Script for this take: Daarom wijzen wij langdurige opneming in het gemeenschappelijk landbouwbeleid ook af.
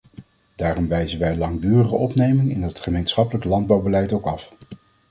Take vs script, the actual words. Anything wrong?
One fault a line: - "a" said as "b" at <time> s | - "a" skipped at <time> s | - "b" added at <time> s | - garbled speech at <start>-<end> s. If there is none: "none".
none